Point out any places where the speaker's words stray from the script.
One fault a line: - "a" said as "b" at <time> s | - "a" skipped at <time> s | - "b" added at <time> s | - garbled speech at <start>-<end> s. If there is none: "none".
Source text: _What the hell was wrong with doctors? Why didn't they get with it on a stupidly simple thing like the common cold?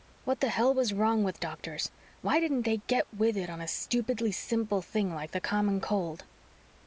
none